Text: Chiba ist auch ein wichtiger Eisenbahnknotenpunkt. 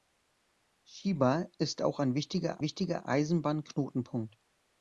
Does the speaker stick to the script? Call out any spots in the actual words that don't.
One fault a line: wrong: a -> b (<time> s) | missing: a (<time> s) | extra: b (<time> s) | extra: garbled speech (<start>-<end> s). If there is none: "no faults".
extra: wichtiger (2.6 s)